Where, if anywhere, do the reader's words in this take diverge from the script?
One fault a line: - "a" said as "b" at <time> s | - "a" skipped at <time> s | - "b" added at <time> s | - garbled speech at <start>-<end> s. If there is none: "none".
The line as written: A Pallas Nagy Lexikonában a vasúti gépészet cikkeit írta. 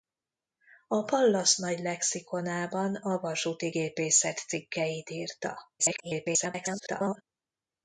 - garbled speech at 5.8-7.2 s